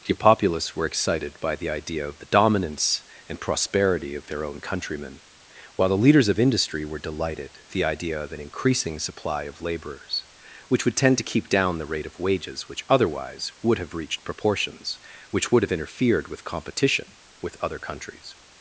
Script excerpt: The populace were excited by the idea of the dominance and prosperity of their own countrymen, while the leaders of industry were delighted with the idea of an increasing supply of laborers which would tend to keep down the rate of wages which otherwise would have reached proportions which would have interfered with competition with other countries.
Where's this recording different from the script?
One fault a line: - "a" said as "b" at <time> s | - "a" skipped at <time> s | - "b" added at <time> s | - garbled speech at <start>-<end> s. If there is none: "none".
- "with" skipped at 7.6 s